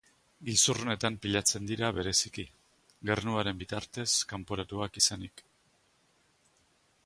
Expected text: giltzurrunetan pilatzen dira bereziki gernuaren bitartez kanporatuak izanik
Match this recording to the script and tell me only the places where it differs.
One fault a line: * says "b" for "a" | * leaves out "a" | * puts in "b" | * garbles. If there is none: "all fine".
all fine